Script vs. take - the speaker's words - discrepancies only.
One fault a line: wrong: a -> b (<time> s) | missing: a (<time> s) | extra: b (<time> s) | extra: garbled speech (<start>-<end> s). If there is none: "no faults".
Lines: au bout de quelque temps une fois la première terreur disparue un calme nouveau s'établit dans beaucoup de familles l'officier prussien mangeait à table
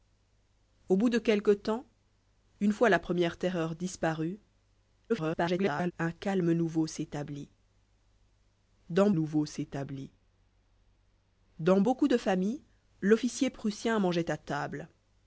extra: garbled speech (5.1-5.9 s)
extra: nouveau s'établit dans (9.1 s)